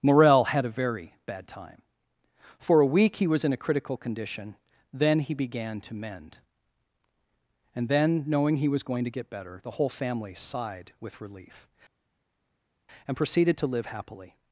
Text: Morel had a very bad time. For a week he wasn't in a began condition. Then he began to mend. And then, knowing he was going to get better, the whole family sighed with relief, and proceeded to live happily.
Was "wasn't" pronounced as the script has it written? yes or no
no